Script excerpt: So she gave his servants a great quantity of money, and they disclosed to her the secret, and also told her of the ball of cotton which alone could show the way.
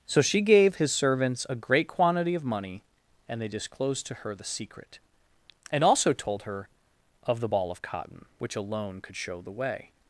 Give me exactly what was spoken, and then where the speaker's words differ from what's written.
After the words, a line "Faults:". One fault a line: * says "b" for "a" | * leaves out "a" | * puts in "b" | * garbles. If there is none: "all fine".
So she gave his servants a great quantity of money, and they disclosed to her the secret, and also told her of the ball of cotton which alone could show the way.
Faults:
all fine